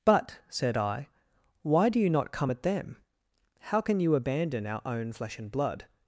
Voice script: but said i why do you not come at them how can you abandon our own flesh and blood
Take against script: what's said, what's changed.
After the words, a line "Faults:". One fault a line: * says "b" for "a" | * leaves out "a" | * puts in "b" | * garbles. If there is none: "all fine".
but said i why do you not come at them how can you abandon our own flesh and blood
Faults:
all fine